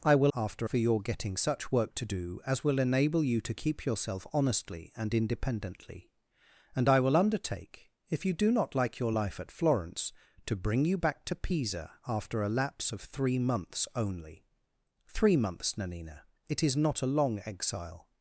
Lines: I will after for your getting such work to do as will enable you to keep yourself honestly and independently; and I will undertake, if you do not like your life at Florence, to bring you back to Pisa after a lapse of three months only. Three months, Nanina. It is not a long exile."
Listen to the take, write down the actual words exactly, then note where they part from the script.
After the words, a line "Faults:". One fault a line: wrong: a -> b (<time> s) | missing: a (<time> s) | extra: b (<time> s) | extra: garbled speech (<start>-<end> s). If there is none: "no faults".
I will after for your getting such work to do as will enable you to keep yourself honestly and independently; and I will undertake, if you do not like your life at Florence, to bring you back to Pisa after a lapse of three months only. Three months, Nanina. It is not a long exile."
Faults:
no faults